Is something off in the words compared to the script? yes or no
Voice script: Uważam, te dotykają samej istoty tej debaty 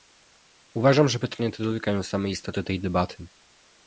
yes